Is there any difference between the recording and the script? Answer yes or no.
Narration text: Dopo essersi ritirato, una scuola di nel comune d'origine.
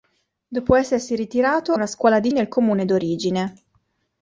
no